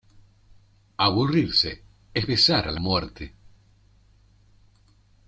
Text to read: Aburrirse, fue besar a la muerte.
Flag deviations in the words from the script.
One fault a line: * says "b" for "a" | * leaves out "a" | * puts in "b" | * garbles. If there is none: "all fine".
* says "es" for "fue"